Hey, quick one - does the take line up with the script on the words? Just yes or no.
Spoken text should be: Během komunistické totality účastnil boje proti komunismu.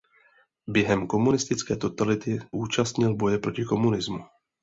yes